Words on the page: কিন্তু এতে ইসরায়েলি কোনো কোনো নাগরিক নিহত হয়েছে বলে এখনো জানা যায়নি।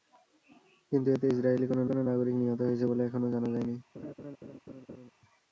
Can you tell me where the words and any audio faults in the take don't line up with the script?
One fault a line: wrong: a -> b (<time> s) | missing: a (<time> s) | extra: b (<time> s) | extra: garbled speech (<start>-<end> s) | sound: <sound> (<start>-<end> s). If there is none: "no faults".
sound: laugh (3.9-5.1 s)